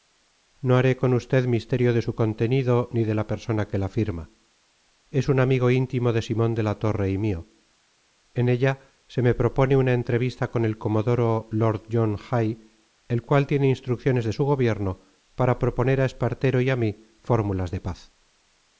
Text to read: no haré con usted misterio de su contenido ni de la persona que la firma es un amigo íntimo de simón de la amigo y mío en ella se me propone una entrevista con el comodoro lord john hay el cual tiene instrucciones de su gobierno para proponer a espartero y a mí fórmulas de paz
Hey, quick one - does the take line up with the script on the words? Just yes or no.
no